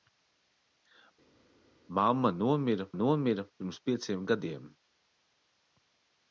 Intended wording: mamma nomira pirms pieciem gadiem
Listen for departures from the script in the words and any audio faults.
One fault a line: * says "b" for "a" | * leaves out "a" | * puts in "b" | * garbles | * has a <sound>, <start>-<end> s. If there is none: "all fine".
* puts in "nomira"